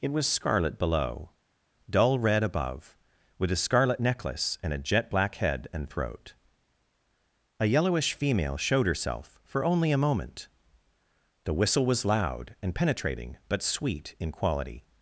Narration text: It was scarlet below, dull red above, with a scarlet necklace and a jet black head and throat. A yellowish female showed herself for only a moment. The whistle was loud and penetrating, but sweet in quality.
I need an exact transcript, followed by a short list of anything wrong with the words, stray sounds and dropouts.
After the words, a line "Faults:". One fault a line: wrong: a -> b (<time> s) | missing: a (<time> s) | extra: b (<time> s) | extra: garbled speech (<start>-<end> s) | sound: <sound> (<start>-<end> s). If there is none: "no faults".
It was scarlet below, dull red above, with a scarlet necklace and a jet black head and throat. A yellowish female showed herself for only a moment. The whistle was loud and penetrating, but sweet in quality.
Faults:
no faults